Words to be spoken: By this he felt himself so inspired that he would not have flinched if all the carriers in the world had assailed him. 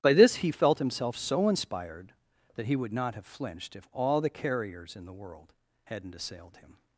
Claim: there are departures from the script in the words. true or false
true